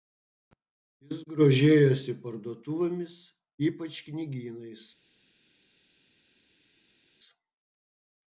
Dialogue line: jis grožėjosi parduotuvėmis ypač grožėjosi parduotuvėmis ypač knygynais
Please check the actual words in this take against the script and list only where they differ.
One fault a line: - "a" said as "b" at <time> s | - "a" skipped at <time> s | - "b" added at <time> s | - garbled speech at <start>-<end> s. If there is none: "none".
- "grožėjosi parduotuvėmis ypač" skipped at 4.0 s